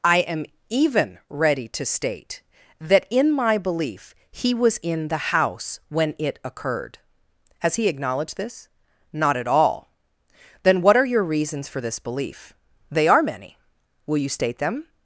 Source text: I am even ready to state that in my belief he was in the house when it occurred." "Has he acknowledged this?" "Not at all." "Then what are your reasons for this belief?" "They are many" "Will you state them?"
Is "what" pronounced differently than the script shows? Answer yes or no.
no